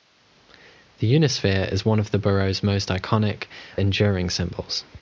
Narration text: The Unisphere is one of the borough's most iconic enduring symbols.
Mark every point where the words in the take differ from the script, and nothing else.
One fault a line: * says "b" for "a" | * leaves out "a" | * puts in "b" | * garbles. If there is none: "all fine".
all fine